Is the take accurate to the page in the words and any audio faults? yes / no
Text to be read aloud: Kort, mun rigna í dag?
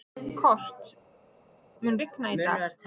yes